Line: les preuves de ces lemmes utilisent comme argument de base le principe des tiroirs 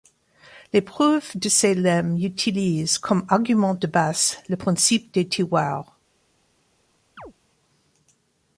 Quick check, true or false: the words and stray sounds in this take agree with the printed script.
false